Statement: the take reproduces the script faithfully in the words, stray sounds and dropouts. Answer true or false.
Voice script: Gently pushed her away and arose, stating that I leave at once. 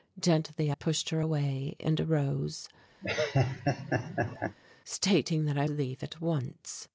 false